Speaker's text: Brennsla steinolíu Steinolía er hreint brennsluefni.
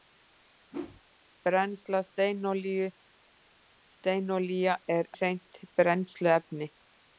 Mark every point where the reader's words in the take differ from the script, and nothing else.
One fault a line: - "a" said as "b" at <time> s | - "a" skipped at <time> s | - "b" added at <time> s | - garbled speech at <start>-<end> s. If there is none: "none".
none